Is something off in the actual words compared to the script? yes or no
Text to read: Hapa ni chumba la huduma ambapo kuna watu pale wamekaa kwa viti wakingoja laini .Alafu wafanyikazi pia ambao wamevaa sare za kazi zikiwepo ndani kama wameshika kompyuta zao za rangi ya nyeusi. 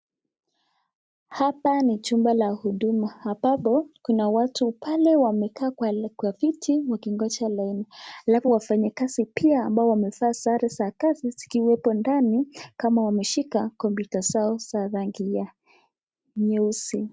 no